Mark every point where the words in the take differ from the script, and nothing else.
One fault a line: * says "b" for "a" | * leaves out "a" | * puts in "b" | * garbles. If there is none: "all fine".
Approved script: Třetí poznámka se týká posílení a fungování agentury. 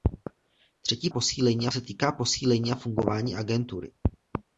* says "posílení" for "poznámka"